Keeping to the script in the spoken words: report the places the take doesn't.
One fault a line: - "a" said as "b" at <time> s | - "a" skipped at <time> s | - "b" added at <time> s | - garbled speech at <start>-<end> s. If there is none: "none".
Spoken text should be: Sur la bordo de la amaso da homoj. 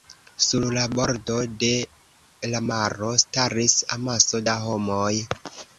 - "maro staris" added at 2.7 s